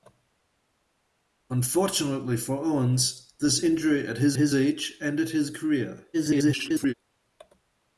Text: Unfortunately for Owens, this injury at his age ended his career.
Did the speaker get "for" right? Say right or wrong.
right